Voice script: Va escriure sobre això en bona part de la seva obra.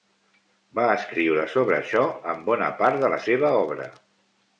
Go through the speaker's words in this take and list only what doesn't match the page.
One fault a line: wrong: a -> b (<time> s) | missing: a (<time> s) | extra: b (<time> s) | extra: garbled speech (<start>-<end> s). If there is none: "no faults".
no faults